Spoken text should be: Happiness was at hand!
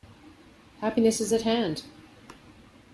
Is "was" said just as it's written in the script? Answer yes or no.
no